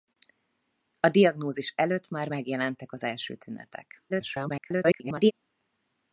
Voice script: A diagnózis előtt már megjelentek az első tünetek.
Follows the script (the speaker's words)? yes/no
no